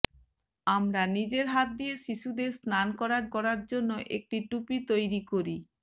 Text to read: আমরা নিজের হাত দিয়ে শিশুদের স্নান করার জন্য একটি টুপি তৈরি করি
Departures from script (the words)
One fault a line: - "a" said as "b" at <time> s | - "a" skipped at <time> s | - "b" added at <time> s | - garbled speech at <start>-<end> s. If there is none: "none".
- "করার" added at 3.3 s